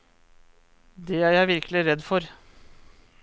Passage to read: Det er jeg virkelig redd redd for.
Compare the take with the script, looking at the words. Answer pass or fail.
fail